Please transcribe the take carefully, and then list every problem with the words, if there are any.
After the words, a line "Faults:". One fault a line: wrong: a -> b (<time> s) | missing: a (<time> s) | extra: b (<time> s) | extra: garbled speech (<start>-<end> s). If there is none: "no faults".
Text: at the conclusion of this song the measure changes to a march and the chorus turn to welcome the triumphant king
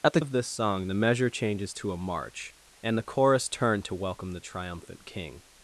at the of this song the measure changes to a march and the chorus turn to welcome the triumphant king
Faults:
missing: conclusion (0.2 s)